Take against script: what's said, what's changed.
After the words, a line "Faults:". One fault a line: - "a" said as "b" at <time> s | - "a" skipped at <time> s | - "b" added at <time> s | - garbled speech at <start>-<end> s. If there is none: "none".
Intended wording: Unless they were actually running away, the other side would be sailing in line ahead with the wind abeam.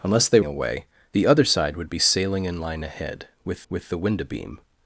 Unless they away, the other side would be sailing in line ahead with with the wind abeam.
Faults:
- "were actually running" skipped at 0.4 s
- "with" added at 3.7 s